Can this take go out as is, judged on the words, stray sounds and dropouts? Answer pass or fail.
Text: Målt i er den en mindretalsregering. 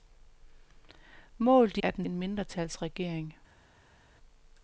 pass